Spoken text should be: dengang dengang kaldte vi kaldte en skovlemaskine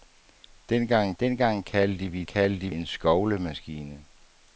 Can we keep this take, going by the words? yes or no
yes